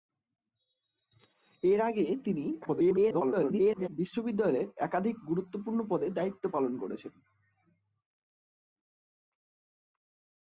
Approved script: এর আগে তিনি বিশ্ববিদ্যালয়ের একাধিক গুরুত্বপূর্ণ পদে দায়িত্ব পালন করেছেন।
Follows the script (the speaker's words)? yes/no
no